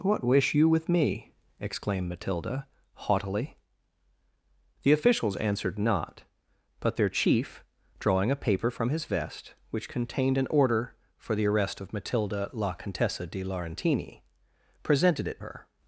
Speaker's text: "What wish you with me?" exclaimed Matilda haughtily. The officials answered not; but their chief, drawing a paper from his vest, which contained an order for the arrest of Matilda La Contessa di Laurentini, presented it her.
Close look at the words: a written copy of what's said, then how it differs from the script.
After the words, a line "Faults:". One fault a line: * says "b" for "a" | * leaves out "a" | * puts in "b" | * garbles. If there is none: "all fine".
"What wish you with me?" exclaimed Matilda haughtily. The officials answered not; but their chief, drawing a paper from his vest, which contained an order for the arrest of Matilda La Contessa di Laurentini, presented it her.
Faults:
all fine